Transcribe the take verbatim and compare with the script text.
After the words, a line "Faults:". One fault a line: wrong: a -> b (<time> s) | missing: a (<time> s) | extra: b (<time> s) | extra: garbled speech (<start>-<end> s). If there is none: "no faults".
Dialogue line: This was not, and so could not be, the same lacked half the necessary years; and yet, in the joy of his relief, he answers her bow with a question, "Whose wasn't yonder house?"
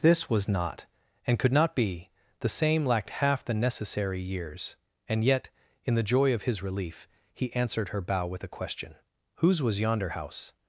This was not, and could not be, the same lacked half the necessary years; and yet, in the joy of his relief, he answered her bow with a question, "Whose was yonder house?"
Faults:
missing: so (1.4 s)
wrong: answers -> answered (7.5 s)
wrong: wasn't -> was (9.6 s)